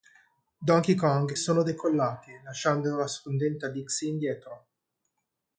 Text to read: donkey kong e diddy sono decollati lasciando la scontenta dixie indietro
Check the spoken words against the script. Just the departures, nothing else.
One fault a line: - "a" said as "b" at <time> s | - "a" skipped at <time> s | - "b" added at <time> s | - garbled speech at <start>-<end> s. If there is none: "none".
- "e diddy" skipped at 1.4 s